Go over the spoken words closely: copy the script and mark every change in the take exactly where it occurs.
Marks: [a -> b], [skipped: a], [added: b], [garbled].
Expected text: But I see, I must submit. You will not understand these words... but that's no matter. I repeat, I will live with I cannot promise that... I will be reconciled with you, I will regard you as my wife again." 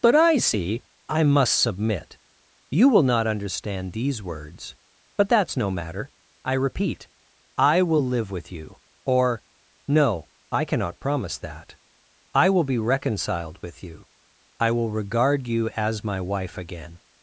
But I see, I must submit. You will not understand these words... but that's no matter. I repeat, I will live with [added: you or no] I cannot promise that... I will be reconciled with you, I will regard you as my wife again."